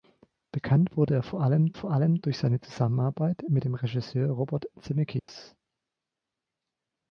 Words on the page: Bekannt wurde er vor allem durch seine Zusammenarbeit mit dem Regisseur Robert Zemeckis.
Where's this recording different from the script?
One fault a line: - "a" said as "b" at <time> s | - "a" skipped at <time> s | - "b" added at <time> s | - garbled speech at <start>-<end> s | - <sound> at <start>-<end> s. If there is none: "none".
- "vor allem" added at 1.7 s
- dropout at 5.2-5.3 s